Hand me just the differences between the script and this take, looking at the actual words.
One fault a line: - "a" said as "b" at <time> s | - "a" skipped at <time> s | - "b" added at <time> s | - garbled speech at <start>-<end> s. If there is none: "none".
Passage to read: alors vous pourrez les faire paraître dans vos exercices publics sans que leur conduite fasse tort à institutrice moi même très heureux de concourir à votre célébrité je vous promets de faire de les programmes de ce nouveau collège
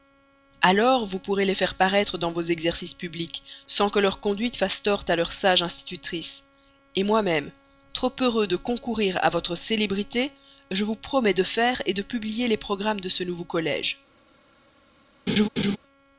- "leur sage" added at 5.2 s
- "très" said as "trop" at 7.9 s
- "publier" added at 12.0 s